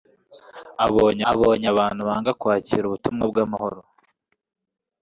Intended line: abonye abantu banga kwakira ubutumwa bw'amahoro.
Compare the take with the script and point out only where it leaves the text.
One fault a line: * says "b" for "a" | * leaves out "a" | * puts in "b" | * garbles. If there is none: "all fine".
* puts in "abonye"